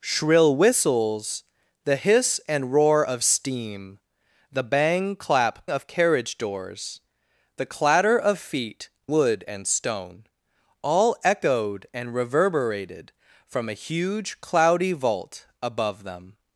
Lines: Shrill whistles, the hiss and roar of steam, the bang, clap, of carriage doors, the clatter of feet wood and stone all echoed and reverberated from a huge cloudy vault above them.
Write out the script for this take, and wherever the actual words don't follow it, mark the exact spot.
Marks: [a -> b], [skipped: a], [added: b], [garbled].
Shrill whistles, the hiss and roar of steam, the bang, clap, of carriage doors, the clatter of feet wood and stone all echoed and reverberated from a huge cloudy vault above them.